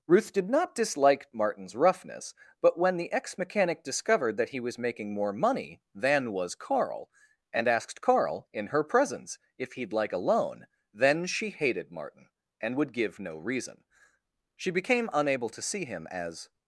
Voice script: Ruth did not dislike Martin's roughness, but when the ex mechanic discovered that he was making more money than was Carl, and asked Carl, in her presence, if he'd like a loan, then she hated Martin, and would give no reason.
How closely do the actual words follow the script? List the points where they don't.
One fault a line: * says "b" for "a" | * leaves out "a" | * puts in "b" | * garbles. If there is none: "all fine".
* puts in "She became unable to see him as"